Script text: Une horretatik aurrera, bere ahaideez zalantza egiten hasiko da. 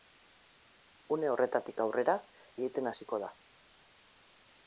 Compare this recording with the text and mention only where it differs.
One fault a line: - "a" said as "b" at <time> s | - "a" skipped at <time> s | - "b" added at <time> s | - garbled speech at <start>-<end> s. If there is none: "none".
- "bere ahaideez zalantza" skipped at 2.1 s